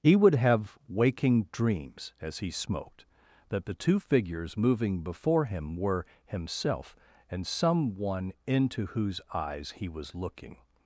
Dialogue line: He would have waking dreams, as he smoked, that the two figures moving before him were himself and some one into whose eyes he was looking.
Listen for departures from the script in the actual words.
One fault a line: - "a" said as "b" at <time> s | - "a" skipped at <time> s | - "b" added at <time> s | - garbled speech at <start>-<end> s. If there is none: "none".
none